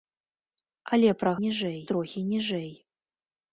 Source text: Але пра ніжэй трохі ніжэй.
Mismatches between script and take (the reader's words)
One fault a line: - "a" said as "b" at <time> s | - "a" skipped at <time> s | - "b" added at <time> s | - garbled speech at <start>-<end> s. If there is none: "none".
none